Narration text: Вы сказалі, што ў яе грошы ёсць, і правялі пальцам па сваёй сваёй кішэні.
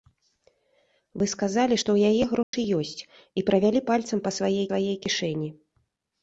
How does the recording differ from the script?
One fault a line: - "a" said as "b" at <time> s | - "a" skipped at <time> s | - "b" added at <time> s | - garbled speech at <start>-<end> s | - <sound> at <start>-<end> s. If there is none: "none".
- dropout at 2.4-2.5 s